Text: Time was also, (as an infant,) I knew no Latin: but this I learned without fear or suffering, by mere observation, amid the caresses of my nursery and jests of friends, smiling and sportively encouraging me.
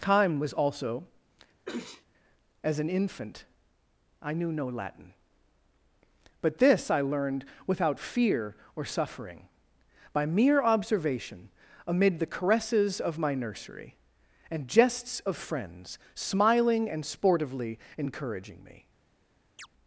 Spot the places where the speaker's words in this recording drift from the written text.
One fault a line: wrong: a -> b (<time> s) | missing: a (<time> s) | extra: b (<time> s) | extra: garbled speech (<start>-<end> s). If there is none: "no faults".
no faults